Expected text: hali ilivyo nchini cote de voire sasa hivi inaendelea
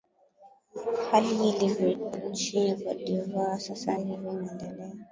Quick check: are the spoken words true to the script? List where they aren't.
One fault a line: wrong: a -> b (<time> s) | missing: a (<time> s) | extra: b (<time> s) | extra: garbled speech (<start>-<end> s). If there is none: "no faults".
no faults